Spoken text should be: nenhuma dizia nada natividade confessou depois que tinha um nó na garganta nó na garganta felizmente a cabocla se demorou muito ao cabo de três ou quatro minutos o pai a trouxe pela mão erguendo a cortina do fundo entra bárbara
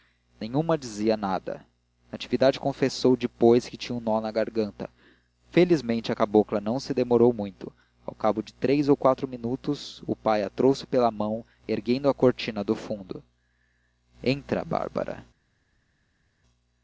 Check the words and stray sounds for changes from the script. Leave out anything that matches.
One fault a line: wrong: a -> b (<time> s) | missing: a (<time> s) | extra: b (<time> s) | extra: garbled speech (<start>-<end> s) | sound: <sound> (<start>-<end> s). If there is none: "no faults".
missing: nó na garganta (4.9 s)
extra: não (6.6 s)